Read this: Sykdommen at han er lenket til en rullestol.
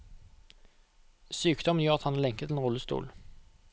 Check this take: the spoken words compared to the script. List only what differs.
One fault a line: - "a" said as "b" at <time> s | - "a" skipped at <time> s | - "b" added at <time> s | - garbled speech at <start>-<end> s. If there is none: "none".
- "gjør" added at 1.9 s